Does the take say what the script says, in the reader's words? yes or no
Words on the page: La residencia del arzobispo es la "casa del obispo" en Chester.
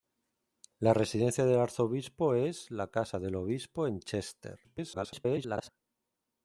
no